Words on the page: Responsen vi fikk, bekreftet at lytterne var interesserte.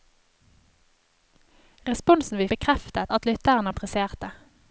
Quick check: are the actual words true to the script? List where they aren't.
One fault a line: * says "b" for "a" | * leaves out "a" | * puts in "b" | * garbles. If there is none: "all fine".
* leaves out "fikk"
* leaves out "var"